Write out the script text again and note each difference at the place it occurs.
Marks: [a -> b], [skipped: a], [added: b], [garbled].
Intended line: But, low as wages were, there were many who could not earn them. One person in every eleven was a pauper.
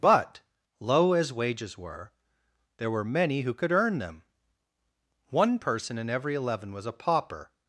But, low as wages were, there were many who could [skipped: not] earn them. One person in every eleven was a pauper.